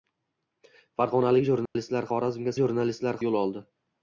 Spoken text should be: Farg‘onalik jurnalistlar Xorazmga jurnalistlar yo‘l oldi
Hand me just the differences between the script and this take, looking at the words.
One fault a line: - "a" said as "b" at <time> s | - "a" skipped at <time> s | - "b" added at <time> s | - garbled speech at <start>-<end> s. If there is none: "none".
none